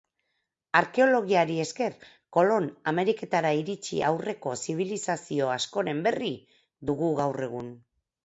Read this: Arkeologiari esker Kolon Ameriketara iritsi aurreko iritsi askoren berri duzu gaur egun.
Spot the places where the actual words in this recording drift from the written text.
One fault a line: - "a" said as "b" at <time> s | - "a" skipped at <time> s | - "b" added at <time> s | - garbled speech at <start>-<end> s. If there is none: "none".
- "iritsi" said as "zibilizazio" at 4.6 s
- "duzu" said as "dugu" at 6.9 s